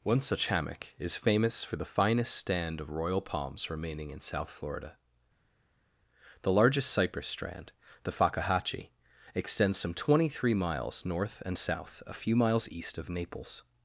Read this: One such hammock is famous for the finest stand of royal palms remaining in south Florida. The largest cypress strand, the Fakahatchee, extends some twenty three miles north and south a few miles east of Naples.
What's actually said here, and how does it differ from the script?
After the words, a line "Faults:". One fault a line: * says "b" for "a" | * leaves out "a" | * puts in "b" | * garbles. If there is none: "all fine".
One such hammock is famous for the finest stand of royal palms remaining in south Florida. The largest cypress strand, the Fakahatchee, extends some twenty three miles north and south a few miles east of Naples.
Faults:
all fine